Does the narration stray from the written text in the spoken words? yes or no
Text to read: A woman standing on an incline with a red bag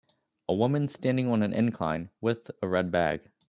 no